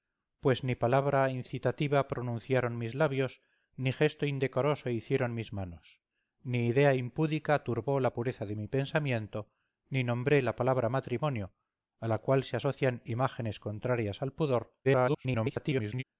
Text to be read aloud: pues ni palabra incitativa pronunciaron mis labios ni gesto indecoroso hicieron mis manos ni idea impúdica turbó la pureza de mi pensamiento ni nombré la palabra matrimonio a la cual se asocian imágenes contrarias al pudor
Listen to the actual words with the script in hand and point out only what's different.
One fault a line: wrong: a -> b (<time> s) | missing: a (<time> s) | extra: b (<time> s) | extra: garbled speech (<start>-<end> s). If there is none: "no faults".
extra: garbled speech (14.8-16.0 s)